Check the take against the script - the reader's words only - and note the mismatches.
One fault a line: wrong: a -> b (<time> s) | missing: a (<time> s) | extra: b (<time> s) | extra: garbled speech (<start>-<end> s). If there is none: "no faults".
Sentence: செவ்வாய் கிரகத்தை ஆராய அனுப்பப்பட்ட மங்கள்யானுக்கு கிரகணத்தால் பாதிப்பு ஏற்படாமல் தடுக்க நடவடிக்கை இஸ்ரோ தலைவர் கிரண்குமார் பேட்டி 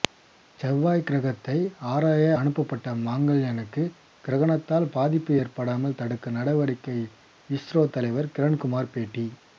no faults